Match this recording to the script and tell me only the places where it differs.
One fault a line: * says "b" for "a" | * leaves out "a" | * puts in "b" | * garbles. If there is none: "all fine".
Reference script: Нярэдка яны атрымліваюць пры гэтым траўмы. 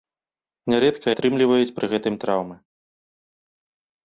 * leaves out "яны"